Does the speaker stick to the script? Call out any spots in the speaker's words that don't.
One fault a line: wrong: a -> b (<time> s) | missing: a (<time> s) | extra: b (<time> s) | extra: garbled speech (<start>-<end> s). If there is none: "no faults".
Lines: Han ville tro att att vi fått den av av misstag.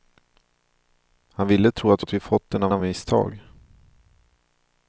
no faults